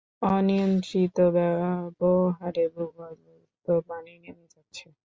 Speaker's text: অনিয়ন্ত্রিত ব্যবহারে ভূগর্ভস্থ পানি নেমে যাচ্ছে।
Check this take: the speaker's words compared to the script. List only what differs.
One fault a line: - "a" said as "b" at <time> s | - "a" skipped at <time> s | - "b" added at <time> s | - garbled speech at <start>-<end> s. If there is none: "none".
none